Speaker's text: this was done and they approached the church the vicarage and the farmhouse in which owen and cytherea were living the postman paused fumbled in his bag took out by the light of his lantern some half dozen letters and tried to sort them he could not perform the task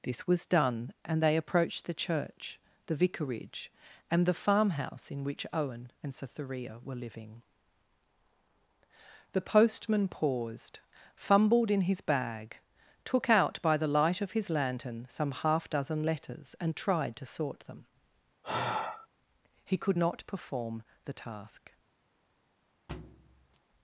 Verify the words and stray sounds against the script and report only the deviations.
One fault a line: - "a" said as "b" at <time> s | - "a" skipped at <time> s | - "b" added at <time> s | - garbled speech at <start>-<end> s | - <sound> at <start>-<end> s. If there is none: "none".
- sigh at 18.4-19.1 s
- thud at 22.9-23.6 s